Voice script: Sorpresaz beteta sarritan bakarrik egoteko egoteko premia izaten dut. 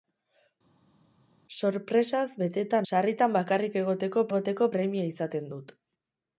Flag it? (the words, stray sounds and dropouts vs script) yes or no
no